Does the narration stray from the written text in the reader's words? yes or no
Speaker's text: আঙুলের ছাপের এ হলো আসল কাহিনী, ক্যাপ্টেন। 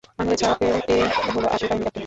no